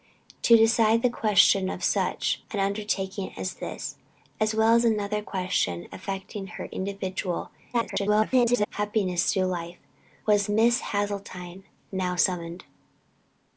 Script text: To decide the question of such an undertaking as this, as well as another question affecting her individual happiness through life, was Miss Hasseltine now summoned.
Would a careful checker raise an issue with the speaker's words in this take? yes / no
yes